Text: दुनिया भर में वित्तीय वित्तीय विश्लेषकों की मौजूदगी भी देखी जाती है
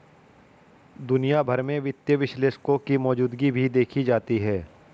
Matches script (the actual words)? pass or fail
fail